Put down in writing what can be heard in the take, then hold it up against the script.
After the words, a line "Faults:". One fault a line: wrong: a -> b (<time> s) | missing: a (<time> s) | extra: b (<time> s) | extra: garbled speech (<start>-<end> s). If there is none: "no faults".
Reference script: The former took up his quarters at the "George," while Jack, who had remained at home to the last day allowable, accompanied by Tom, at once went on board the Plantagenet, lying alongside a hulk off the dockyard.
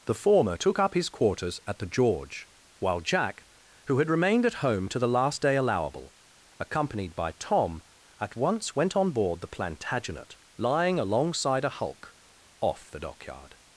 The former took up his quarters at the "George," while Jack, who had remained at home to the last day allowable, accompanied by Tom, at once went on board the Plantagenet, lying alongside a hulk off the dockyard.
Faults:
no faults